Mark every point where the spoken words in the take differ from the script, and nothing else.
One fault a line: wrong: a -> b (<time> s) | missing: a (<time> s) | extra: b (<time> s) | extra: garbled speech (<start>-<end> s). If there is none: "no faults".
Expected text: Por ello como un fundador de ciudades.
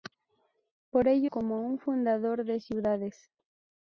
no faults